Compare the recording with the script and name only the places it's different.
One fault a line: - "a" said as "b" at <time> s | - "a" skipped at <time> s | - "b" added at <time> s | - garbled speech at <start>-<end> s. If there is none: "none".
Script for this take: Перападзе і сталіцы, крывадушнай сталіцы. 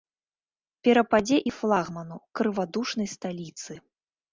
- "сталіцы" said as "флагману" at 1.6 s